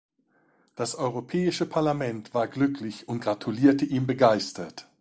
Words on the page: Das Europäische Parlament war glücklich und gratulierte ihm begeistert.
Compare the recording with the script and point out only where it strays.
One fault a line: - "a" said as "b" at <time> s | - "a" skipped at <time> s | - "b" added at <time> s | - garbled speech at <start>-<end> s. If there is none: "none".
none